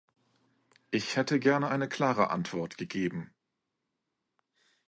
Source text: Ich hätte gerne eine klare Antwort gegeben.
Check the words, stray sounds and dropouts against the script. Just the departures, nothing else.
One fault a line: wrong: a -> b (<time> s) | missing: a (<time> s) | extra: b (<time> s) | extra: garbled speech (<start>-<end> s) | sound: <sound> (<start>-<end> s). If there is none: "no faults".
no faults